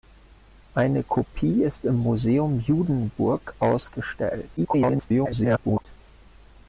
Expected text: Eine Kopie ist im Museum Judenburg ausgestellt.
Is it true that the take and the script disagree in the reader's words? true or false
true